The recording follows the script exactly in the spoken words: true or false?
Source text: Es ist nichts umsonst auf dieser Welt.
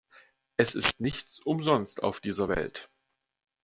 true